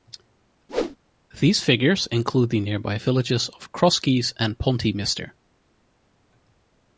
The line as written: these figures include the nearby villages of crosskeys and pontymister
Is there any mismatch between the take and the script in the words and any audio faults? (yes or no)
yes